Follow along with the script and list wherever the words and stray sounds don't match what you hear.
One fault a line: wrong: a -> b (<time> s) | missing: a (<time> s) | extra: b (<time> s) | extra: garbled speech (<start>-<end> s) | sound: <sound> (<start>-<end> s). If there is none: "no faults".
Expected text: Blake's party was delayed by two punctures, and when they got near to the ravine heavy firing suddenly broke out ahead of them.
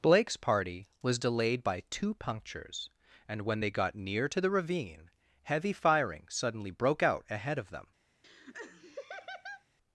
sound: laugh (8.2-9.6 s)